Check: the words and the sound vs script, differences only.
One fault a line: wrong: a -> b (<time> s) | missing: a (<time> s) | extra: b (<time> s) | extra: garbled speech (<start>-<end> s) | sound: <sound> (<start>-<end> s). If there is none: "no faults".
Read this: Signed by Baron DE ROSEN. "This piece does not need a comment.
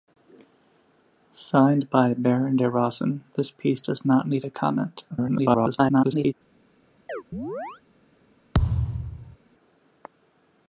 extra: garbled speech (5.1-6.3 s)
sound: chirp (7.1-7.8 s)
sound: thud (8.5-9.4 s)